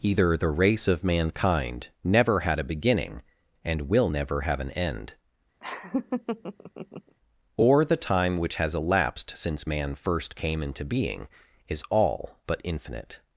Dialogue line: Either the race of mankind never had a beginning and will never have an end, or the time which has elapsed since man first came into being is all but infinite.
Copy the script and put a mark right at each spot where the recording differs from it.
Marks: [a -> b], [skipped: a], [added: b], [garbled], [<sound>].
Either the race of mankind never had a beginning and will never have an end, [laugh] or the time which has elapsed since man first came into being is all but infinite.